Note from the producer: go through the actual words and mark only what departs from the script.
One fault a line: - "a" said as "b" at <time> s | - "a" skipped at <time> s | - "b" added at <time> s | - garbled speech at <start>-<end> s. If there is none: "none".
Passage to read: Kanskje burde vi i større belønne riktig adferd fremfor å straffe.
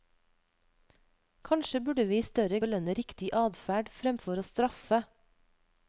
none